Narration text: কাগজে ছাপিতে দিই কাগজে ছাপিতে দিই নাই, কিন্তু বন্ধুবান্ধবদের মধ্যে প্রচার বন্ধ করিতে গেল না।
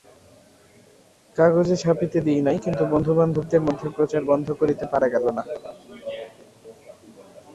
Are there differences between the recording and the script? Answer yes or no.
yes